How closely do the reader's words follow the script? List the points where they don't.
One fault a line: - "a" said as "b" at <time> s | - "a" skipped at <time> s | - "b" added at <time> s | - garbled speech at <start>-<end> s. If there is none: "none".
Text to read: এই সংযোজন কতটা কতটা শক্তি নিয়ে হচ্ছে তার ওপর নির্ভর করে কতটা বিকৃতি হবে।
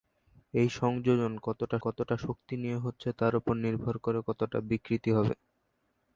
none